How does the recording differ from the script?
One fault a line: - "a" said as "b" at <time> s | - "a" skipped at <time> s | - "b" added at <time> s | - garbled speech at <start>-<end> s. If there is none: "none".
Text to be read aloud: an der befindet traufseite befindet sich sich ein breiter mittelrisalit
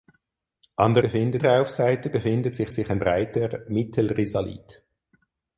none